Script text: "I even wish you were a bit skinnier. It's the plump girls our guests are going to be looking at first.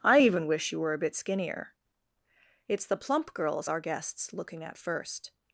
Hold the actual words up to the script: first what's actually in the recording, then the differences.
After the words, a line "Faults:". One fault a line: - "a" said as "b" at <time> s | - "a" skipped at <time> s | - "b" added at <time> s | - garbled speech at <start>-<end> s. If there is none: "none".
"I even wish you were a bit skinnier. It's the plump girls our guests looking at first.
Faults:
- "are going to be" skipped at 4.3 s